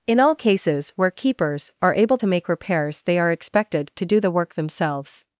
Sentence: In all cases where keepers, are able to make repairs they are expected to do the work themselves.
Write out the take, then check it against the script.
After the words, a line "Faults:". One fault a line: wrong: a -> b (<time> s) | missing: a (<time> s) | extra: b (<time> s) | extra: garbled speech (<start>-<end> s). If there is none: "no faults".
In all cases where keepers, are able to make repairs they are expected to do the work themselves.
Faults:
no faults